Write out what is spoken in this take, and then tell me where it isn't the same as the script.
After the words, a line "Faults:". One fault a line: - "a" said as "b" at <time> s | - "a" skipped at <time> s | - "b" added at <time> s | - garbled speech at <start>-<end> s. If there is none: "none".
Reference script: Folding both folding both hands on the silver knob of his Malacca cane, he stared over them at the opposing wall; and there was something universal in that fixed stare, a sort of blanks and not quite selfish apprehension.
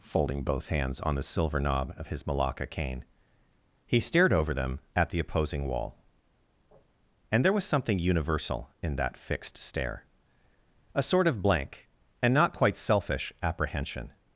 Folding both hands on the silver knob of his Malacca cane, he stared over them at the opposing wall; and there was something universal in that fixed stare, a sort of blank and not quite selfish apprehension.
Faults:
- "folding both" skipped at 0.7 s
- "blanks" said as "blank" at 11.4 s